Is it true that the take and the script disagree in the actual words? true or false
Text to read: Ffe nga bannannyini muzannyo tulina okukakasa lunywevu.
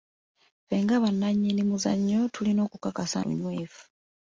false